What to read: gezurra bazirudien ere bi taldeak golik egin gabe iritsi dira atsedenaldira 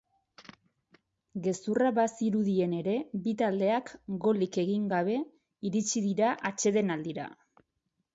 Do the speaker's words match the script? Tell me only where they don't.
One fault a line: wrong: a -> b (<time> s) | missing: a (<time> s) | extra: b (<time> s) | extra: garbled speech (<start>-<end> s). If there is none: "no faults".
no faults